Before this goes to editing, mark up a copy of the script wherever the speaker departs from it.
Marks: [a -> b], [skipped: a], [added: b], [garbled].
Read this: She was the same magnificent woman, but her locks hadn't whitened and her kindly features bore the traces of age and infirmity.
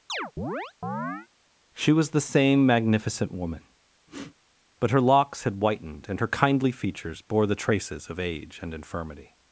She was the same magnificent woman, but her locks [hadn't -> had] whitened and her kindly features bore the traces of age and infirmity.